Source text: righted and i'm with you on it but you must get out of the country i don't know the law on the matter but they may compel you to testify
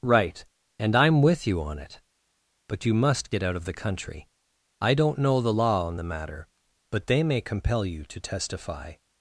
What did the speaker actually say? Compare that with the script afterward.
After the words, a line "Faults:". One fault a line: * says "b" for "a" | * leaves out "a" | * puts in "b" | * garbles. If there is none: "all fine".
right and i'm with you on it but you must get out of the country i don't know the law on the matter but they may compel you to testify
Faults:
* says "right" for "righted"